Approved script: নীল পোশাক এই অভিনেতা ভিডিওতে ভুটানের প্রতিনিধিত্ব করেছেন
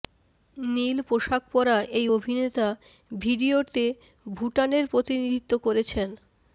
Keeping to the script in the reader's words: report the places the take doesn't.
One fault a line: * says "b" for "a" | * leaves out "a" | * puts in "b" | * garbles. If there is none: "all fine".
* puts in "পরা"